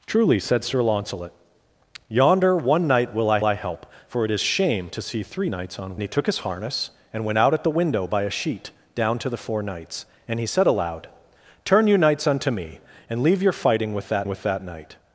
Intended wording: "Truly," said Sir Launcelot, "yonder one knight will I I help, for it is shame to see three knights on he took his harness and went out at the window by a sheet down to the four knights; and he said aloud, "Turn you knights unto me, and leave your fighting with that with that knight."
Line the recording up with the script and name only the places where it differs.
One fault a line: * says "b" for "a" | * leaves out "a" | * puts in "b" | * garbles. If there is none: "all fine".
all fine